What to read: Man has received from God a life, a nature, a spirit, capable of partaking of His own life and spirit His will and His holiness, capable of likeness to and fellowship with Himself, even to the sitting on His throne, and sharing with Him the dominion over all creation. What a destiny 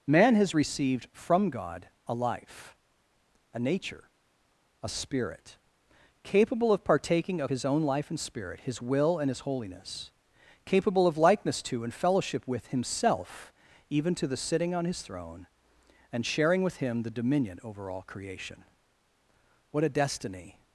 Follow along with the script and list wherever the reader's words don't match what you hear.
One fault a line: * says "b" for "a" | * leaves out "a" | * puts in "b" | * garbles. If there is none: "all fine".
all fine